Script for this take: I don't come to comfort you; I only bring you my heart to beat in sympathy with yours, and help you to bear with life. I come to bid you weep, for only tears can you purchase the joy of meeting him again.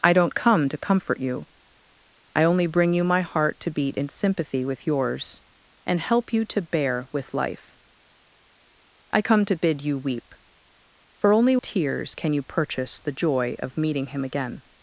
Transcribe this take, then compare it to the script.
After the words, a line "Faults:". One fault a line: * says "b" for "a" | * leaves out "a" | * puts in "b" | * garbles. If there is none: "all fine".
I don't come to comfort you; I only bring you my heart to beat in sympathy with yours, and help you to bear with life. I come to bid you weep, for only tears can you purchase the joy of meeting him again.
Faults:
all fine